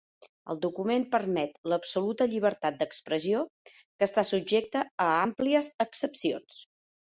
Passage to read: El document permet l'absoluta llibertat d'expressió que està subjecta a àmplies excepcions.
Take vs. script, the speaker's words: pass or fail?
pass